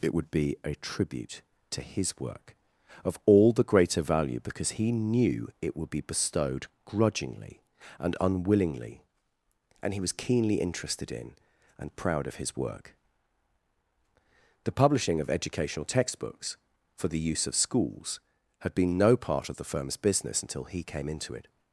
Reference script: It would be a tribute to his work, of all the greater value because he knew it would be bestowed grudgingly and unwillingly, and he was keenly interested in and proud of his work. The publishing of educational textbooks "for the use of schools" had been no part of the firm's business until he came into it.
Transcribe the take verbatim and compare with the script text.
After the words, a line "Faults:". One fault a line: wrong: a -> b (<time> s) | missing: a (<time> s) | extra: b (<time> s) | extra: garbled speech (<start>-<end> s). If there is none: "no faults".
It would be a tribute to his work, of all the greater value because he knew it would be bestowed grudgingly and unwillingly, and he was keenly interested in and proud of his work. The publishing of educational textbooks "for the use of schools" had been no part of the firm's business until he came into it.
Faults:
no faults